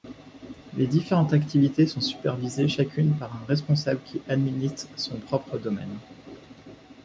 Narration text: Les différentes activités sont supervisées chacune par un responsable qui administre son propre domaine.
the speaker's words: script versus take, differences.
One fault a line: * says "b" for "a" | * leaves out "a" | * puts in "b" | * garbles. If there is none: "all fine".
all fine